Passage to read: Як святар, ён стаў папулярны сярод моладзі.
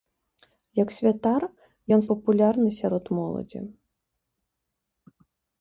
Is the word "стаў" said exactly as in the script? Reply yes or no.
no